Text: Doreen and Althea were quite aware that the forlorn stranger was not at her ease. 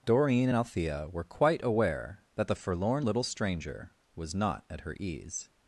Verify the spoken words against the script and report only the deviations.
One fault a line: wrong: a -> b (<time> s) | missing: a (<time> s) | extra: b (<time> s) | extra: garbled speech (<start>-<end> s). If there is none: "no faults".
extra: little (3.0 s)